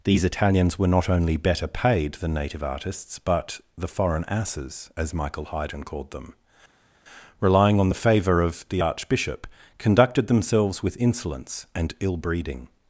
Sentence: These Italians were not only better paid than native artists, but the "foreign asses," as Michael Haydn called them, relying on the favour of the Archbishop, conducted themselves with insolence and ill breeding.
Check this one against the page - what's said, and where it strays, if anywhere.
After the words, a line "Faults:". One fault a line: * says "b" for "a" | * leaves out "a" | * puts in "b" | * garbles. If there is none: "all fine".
These Italians were not only better paid than native artists, but the "foreign asses," as Michael Haydn called them, relying on the favour of the Archbishop, conducted themselves with insolence and ill breeding.
Faults:
all fine